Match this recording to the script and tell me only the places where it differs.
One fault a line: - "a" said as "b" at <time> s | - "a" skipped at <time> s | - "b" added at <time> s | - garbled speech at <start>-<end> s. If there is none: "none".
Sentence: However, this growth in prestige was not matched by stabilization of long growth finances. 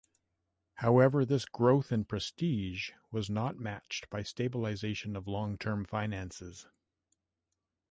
- "growth" said as "term" at 5.6 s